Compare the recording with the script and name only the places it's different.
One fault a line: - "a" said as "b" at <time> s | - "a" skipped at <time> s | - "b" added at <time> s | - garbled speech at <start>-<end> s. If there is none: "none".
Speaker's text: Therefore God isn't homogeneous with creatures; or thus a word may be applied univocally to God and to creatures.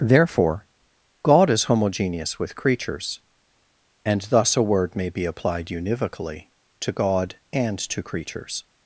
- "isn't" said as "is" at 1.5 s
- "or" said as "and" at 4.0 s